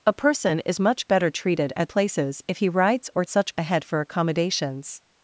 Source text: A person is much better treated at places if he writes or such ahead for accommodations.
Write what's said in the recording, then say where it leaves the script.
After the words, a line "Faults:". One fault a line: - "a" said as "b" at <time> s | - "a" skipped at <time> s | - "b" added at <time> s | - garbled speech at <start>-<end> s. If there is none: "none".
A person is much better treated at places if he writes or such ahead for accommodations.
Faults:
none